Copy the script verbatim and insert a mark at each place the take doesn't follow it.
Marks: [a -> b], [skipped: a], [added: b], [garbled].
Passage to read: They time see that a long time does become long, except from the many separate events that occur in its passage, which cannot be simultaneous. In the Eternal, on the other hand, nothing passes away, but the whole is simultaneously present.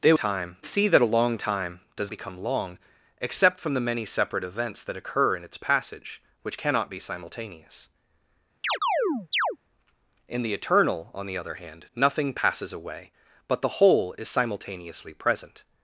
They time see that a long time does become long, except from the many separate events that occur in its passage, which cannot be simultaneous. In the Eternal, on the other hand, nothing passes away, but the whole is simultaneously present.